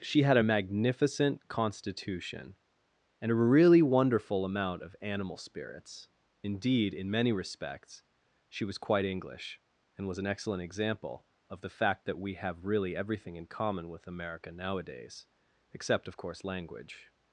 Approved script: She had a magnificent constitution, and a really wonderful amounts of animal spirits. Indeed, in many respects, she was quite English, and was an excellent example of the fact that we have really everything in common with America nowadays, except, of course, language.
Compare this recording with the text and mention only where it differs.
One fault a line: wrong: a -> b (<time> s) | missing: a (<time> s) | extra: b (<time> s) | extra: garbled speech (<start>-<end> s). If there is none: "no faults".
wrong: amounts -> amount (4.4 s)